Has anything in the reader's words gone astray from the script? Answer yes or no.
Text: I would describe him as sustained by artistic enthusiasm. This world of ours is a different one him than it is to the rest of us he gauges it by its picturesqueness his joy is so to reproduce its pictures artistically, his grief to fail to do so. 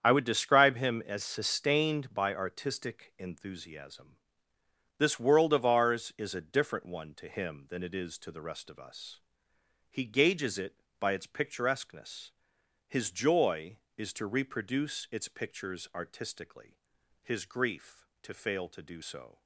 yes